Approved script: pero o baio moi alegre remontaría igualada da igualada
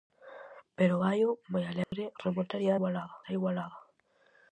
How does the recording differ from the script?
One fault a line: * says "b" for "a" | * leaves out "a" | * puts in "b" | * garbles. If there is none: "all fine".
all fine